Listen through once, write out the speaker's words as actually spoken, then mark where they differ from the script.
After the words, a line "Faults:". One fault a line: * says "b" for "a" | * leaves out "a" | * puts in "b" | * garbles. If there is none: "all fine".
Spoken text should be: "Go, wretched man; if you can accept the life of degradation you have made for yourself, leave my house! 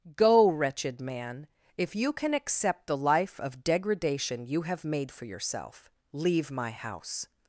"Go, wretched man; if you can accept the life of degradation you have made for yourself, leave my house!
Faults:
all fine